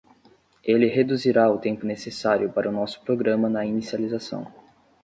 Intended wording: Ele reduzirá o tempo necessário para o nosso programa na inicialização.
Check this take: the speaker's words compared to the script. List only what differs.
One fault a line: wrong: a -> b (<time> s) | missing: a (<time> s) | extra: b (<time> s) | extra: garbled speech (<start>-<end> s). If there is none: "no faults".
no faults